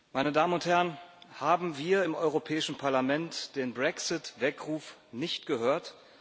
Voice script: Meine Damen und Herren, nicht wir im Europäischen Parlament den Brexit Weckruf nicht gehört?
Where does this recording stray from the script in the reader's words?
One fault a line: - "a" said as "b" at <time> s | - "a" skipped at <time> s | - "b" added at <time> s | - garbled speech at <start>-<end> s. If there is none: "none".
- "nicht" said as "haben" at 1.4 s